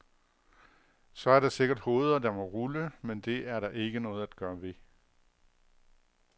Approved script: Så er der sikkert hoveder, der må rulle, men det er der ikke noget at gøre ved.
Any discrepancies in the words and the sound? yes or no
no